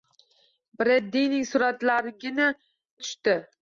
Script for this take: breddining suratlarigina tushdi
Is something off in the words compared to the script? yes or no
no